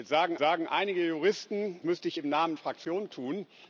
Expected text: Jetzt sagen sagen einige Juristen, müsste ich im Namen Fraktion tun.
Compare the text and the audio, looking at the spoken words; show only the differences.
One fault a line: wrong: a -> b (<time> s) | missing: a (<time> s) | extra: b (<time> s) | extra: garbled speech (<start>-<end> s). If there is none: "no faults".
no faults